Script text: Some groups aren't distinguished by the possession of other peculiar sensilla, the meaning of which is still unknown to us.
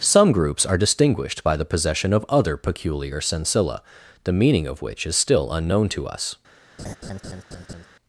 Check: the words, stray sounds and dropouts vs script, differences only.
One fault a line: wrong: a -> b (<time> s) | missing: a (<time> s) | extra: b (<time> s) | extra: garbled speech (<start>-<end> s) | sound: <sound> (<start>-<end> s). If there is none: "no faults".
wrong: aren't -> are (0.6 s)
sound: laugh (6.8-7.9 s)